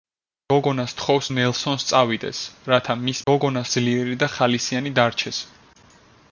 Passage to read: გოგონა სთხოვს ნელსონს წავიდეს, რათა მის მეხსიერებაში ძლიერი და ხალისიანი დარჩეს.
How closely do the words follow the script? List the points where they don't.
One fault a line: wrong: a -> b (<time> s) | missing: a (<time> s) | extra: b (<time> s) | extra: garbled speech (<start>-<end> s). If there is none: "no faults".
wrong: მეხსიერებაში -> გოგონა (3.3 s)